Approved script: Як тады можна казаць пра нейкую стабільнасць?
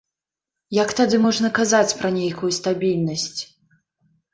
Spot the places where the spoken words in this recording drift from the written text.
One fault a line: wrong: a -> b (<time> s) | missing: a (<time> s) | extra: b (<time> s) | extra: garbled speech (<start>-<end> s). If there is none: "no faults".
no faults